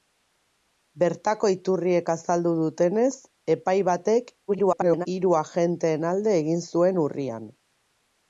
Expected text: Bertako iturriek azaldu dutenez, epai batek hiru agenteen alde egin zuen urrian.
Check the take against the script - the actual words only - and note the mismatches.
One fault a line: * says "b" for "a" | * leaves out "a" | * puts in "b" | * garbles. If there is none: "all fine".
* garbles